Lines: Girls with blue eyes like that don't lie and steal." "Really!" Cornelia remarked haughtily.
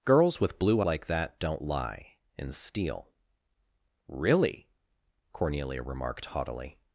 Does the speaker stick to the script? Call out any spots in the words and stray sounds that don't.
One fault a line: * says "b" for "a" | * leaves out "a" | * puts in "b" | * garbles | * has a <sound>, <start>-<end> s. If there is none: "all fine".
* leaves out "eyes"